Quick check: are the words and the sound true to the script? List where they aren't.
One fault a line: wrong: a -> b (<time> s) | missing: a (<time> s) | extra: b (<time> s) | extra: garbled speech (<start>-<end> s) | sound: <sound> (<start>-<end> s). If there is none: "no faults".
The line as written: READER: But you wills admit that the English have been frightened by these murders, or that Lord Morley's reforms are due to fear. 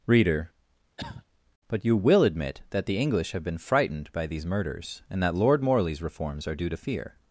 sound: cough (1.0-1.3 s)
wrong: wills -> will (2.0 s)
wrong: or -> and (5.1 s)